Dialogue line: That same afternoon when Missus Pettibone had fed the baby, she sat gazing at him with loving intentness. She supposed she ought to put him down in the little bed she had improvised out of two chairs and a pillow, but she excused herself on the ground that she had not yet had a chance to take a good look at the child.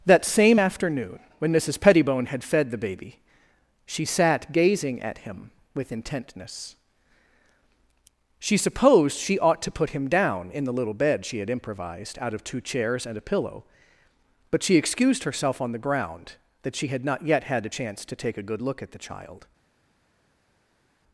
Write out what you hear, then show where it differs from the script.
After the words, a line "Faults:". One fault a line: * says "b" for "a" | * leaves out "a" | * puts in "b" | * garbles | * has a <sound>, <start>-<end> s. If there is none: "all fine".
That same afternoon when Missus Pettibone had fed the baby, she sat gazing at him with intentness. She supposed she ought to put him down in the little bed she had improvised out of two chairs and a pillow, but she excused herself on the ground that she had not yet had a chance to take a good look at the child.
Faults:
* leaves out "loving"